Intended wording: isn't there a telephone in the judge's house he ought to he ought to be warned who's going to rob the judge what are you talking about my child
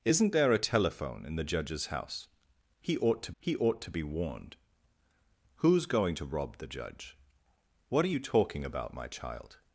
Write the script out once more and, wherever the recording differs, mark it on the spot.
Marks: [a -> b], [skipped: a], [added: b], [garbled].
isn't there a telephone in the judge's house he ought to he ought to be warned who's going to rob the judge what are you talking about my child